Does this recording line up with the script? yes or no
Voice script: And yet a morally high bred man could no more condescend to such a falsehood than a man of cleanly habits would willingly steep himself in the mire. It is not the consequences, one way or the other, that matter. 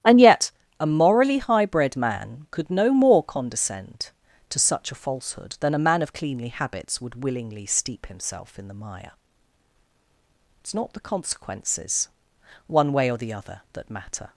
yes